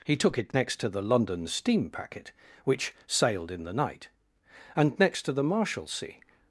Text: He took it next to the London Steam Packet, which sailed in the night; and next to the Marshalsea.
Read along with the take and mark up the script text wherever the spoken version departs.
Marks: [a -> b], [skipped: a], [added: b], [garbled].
He took it next to the London Steam Packet, which sailed in the night; and next to the Marshalsea.